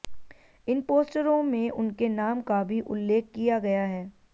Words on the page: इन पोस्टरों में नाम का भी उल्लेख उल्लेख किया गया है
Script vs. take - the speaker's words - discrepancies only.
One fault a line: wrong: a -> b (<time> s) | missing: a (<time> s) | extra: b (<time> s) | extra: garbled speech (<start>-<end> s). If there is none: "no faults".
extra: उनके (1.7 s)
missing: उल्लेख (3.3 s)